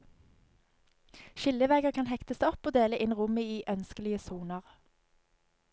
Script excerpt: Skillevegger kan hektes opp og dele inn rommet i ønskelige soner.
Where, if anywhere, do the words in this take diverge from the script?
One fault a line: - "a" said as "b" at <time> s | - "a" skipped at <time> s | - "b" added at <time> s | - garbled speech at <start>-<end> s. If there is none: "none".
none